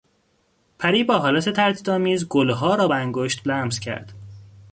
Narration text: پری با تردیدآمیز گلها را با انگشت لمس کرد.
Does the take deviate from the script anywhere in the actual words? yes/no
yes